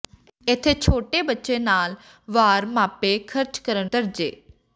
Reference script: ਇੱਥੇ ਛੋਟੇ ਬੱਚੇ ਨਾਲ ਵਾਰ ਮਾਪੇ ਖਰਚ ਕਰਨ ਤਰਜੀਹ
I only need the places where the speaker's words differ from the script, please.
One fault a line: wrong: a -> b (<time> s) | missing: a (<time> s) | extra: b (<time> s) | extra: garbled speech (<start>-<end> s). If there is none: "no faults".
no faults